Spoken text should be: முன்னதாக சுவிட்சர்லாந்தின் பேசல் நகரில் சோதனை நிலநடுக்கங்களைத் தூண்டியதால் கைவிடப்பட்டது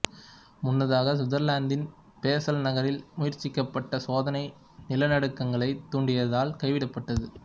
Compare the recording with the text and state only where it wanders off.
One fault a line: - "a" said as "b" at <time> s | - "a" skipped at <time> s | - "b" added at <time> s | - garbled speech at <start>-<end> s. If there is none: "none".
- "முயற்சிக்கப்பட்ட" added at 3.2 s